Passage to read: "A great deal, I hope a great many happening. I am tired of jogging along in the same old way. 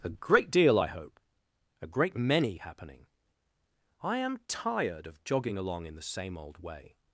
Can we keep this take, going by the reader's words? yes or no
yes